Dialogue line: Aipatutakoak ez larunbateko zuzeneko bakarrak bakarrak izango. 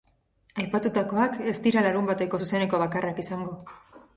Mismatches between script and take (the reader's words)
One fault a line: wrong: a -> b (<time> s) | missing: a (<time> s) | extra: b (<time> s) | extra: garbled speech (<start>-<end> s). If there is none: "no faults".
extra: dira (1.7 s)
missing: bakarrak (3.2 s)